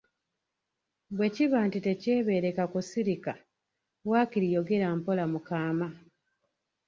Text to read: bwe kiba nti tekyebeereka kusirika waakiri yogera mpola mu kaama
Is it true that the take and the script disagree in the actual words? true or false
false